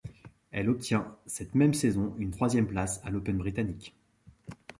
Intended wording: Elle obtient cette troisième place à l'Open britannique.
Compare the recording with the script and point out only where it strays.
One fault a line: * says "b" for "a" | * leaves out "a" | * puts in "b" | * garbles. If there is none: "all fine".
* puts in "même saison une"